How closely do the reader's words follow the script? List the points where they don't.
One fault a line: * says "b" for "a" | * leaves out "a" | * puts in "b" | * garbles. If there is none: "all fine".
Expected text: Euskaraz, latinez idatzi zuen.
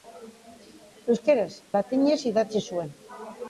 all fine